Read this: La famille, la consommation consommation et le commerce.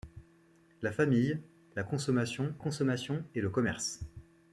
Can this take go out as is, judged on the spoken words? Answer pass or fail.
pass